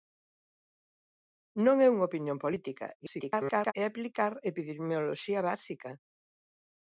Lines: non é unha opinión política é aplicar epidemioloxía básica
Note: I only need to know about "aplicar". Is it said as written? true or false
true